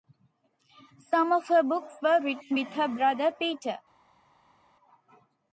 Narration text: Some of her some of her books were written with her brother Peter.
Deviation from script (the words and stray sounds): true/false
true